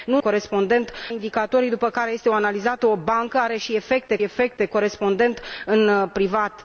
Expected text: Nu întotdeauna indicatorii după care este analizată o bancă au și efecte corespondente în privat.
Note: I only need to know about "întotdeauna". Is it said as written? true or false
false